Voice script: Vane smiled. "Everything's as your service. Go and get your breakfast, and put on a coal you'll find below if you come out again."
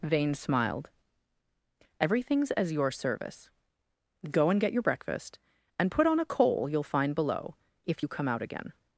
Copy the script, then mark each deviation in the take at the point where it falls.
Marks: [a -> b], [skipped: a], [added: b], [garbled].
Vane smiled. "Everything's as your service. Go and get your breakfast, and put on a coal you'll find below if you come out again."